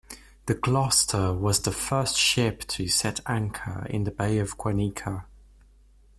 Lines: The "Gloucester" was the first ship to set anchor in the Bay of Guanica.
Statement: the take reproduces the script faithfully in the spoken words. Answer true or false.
true